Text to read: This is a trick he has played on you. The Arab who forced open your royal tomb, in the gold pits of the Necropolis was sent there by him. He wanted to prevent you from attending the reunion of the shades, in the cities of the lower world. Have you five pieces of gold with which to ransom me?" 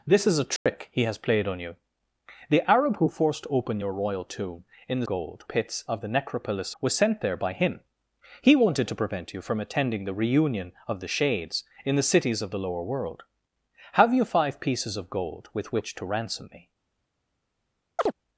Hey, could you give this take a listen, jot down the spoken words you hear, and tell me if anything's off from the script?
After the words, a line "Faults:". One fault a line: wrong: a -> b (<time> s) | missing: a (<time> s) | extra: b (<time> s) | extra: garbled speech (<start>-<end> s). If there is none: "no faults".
This is a trick he has played on you. The Arab who forced open your royal tomb, in the gold pits of the Necropolis was sent there by him. He wanted to prevent you from attending the reunion of the shades, in the cities of the lower world. Have you five pieces of gold with which to ransom me?"
Faults:
no faults